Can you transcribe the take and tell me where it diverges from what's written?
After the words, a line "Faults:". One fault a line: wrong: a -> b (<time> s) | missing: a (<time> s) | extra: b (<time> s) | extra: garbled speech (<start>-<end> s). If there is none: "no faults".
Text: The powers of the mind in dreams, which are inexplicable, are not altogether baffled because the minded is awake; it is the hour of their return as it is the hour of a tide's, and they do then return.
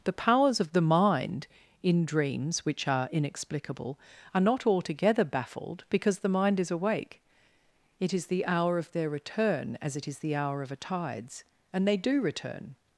The powers of the mind in dreams, which are inexplicable, are not altogether baffled because the mind is awake; it is the hour of their return as it is the hour of a tide's, and they do return.
Faults:
wrong: minded -> mind (6.3 s)
missing: then (12.2 s)